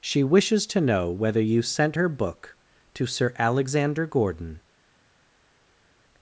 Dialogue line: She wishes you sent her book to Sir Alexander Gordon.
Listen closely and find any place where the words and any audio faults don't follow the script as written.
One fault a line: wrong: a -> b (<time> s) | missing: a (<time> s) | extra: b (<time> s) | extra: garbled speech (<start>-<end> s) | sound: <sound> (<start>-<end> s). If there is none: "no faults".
extra: to know whether (0.7 s)